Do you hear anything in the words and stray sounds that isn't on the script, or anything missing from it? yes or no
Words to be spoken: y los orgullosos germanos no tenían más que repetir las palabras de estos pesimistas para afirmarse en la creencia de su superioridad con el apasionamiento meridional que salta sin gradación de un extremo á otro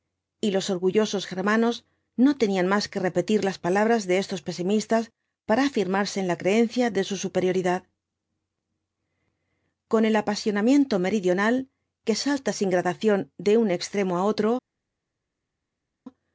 no